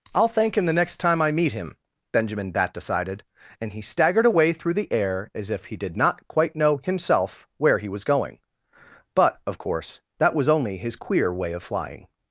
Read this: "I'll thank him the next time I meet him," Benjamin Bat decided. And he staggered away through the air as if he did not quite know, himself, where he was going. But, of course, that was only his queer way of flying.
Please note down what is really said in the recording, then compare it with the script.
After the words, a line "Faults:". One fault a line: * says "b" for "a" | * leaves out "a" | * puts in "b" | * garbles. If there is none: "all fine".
"I'll thank him the next time I meet him," Benjamin Bat decided. And he staggered away through the air as if he did not quite know, himself, where he was going. But, of course, that was only his queer way of flying.
Faults:
all fine